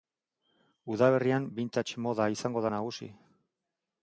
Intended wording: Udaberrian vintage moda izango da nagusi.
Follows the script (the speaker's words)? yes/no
yes